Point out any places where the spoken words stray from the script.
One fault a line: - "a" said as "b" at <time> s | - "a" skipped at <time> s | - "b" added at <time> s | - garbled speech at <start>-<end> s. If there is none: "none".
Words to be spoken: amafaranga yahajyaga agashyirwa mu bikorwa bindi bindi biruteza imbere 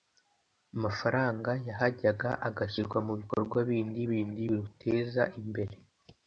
none